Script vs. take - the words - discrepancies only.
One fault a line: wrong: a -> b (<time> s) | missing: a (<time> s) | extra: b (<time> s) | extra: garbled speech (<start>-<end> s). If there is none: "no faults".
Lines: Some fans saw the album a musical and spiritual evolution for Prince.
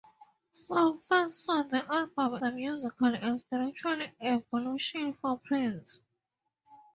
no faults